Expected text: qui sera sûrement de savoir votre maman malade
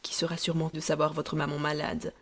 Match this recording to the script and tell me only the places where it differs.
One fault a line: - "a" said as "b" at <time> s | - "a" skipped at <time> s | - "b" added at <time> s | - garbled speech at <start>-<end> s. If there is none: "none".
none